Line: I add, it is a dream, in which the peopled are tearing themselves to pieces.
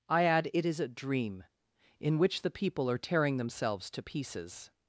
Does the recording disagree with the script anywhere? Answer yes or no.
yes